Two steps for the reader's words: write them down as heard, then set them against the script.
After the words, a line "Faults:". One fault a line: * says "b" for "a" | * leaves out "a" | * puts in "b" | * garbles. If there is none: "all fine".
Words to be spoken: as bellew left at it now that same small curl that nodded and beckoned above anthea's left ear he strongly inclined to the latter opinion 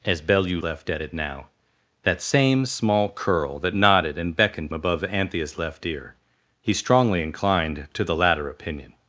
as bellew left at it now that same small curl that nodded and beckoned above anthea's left ear he strongly inclined to the latter opinion
Faults:
all fine